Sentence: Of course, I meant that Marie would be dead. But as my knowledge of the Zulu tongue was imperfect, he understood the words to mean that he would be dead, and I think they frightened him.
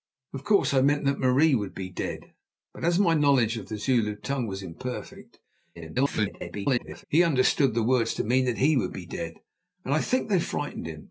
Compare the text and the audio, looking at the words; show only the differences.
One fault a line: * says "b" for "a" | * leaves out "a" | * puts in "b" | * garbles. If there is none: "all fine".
* garbles